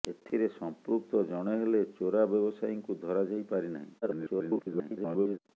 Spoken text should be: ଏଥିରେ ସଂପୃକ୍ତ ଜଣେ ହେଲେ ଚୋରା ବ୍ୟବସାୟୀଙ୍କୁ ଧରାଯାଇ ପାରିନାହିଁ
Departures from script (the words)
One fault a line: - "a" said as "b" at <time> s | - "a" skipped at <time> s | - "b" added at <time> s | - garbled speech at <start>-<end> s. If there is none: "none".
- garbled speech at 4.0-5.4 s